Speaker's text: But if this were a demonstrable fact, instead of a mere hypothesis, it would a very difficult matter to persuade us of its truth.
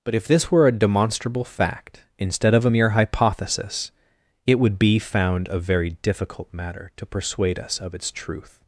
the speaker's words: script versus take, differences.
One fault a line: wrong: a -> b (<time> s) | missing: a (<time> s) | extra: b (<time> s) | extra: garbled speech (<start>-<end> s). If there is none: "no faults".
extra: be found (4.8 s)